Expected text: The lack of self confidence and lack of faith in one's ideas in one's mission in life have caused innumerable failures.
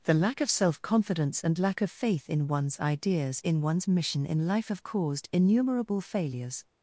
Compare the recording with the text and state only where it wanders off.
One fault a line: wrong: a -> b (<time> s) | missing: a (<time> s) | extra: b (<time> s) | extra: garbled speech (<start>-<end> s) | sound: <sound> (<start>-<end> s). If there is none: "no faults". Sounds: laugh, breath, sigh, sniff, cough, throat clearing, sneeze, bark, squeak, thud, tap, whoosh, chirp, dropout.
no faults